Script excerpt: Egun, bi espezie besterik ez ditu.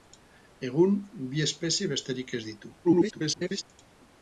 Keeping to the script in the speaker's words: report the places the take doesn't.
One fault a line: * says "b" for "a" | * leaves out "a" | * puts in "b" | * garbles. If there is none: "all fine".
* garbles